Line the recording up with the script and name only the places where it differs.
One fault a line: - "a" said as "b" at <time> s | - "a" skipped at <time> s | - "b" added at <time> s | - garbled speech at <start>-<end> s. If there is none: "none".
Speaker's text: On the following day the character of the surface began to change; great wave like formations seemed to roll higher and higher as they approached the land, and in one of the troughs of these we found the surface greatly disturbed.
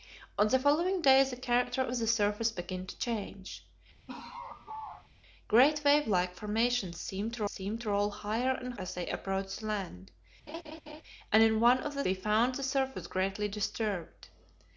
- "seemed to" added at 7.5 s
- "higher" skipped at 8.7 s
- "troughs of these" skipped at 12.0 s